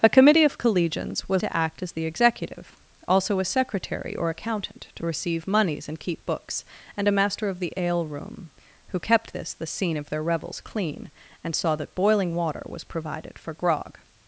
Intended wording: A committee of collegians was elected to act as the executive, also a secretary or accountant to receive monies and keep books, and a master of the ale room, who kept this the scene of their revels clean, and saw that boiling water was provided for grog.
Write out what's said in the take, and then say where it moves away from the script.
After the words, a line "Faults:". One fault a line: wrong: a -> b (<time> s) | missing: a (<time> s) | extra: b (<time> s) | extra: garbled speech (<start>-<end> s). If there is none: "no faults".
A committee of collegians was to act as the executive, also a secretary or accountant to receive monies and keep books, and a master of the ale room, who kept this the scene of their revels clean, and saw that boiling water was provided for grog.
Faults:
missing: elected (1.4 s)